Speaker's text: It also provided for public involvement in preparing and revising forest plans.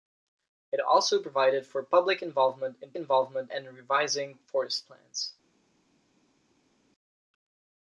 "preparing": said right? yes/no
no